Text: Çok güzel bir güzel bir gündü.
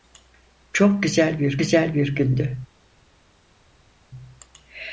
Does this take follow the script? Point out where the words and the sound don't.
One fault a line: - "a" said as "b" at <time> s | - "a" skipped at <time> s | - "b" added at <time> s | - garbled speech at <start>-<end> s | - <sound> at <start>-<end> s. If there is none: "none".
none